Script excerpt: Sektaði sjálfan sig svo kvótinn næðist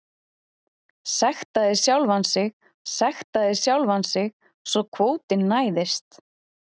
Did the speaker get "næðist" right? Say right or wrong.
right